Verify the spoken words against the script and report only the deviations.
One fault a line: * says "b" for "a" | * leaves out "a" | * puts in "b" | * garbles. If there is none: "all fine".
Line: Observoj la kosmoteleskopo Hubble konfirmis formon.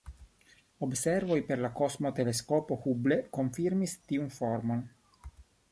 * puts in "per"
* puts in "tiun"